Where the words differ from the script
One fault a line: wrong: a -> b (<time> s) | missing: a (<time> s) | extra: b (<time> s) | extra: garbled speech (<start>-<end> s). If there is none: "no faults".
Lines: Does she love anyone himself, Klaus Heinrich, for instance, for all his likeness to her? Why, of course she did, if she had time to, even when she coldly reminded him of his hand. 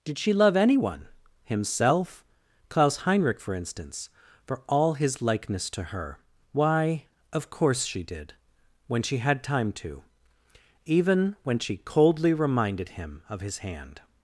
wrong: Does -> Did (0.0 s)
wrong: if -> when (8.9 s)